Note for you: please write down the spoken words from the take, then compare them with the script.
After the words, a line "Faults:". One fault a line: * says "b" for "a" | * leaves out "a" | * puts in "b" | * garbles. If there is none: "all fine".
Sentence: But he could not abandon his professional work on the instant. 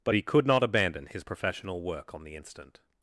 But he could not abandon his professional work on the instant.
Faults:
all fine